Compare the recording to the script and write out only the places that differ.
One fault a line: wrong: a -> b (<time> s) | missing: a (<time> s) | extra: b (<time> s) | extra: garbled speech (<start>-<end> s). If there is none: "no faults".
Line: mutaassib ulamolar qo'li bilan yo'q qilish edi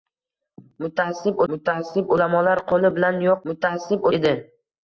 extra: mutaassib (1.5 s)
wrong: qilish -> mutaassib (3.5 s)